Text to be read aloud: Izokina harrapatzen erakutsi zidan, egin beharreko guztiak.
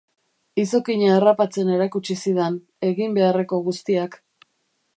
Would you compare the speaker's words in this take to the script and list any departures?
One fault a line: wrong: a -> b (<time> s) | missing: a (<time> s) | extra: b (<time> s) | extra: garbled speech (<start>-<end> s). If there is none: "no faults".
no faults